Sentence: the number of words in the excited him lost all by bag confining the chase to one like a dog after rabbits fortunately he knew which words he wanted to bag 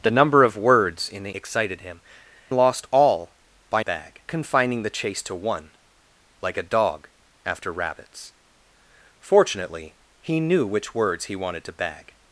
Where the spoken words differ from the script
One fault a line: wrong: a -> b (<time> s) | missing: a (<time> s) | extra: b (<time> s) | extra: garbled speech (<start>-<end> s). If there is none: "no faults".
no faults